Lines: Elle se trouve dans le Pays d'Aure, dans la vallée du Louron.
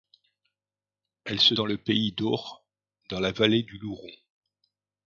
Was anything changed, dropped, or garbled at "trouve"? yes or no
yes